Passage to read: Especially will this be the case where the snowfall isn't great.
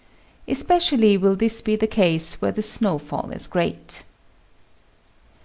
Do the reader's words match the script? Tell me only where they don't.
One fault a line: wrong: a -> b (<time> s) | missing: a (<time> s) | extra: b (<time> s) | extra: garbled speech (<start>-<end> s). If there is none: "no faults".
wrong: isn't -> is (3.3 s)